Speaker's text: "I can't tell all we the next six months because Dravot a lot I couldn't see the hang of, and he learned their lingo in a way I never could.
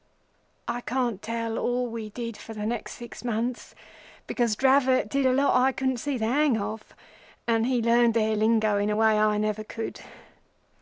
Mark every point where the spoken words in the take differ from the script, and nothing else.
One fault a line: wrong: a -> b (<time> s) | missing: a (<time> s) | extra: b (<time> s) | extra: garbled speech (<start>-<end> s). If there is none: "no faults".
extra: did for (2.1 s)
extra: did (5.1 s)